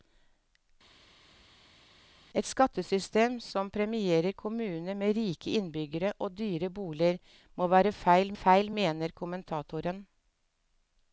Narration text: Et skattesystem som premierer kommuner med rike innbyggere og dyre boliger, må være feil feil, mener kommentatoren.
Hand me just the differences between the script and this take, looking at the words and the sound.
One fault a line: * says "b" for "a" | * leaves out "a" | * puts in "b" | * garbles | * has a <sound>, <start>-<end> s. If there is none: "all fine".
all fine